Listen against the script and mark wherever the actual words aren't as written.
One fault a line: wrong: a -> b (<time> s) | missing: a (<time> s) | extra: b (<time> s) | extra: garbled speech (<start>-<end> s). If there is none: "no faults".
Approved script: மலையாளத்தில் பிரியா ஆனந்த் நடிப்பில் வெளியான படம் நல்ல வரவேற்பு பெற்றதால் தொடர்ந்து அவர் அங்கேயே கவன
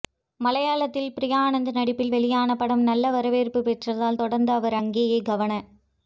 no faults